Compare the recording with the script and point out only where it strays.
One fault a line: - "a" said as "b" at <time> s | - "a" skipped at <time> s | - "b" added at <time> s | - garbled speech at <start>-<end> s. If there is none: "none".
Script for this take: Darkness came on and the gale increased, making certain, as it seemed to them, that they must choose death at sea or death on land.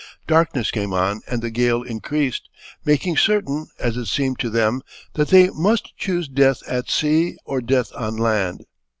none